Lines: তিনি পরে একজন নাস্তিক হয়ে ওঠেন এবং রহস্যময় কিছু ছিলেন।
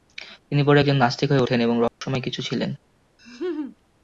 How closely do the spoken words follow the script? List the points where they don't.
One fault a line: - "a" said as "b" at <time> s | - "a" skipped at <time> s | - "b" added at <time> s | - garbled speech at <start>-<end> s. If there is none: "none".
none